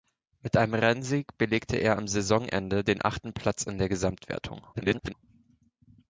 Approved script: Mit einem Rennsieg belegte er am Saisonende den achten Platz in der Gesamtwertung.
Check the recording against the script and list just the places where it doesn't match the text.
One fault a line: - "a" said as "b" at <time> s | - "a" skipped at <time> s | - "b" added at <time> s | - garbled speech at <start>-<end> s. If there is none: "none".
- garbled speech at 4.7-5.1 s